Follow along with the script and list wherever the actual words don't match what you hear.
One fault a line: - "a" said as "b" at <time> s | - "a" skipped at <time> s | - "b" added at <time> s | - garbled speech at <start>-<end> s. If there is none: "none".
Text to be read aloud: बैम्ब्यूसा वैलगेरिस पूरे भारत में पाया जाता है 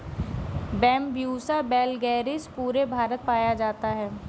- "में" skipped at 3.3 s